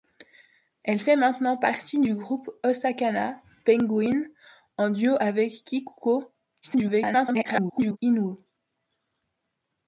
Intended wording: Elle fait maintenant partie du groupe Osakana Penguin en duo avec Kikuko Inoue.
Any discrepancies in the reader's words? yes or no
yes